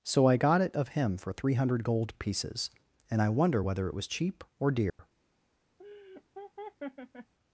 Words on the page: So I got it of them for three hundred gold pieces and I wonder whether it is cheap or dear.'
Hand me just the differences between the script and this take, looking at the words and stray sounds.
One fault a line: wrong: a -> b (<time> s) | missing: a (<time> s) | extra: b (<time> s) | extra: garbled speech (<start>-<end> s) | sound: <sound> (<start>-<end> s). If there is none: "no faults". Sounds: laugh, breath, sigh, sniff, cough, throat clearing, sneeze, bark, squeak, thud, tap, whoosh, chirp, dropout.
wrong: them -> him (0.9 s)
wrong: is -> was (3.9 s)
sound: dropout (4.9-5.0 s)
sound: laugh (5.8-7.3 s)